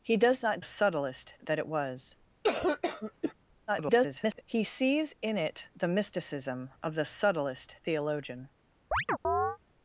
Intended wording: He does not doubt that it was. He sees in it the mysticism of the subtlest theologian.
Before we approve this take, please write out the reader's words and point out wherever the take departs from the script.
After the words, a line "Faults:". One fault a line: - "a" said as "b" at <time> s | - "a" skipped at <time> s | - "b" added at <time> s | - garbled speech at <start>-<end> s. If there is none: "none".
He does not subtlest that it was. [garbled] He sees in it the mysticism of the subtlest theologian.
Faults:
- "doubt" said as "subtlest" at 0.6 s
- garbled speech at 3.7-4.4 s